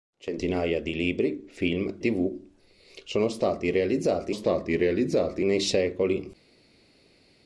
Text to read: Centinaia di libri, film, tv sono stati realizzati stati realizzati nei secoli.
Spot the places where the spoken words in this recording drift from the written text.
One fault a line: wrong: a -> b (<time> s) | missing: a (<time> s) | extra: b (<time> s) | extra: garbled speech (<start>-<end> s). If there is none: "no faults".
no faults